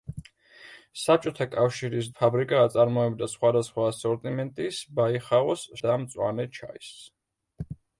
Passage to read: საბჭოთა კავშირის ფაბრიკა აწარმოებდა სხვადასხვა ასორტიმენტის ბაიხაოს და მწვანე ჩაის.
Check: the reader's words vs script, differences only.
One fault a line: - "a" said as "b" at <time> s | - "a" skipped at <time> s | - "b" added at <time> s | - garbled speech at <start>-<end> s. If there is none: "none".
none